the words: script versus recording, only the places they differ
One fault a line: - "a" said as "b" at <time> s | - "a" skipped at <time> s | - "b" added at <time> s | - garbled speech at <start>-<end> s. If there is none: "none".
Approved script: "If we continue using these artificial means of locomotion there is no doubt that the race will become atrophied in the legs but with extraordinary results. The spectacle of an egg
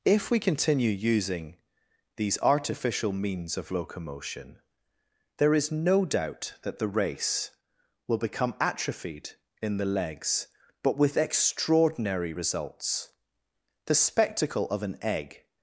none